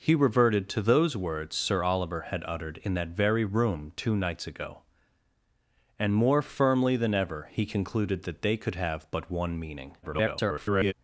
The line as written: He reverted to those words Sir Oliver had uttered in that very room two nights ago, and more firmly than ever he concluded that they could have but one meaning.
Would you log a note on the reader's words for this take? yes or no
yes